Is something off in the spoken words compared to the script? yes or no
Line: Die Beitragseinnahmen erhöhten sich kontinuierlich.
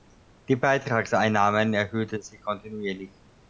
no